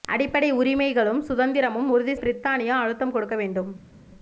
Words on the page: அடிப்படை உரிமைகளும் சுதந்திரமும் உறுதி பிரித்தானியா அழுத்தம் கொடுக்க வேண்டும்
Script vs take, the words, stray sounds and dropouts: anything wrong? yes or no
no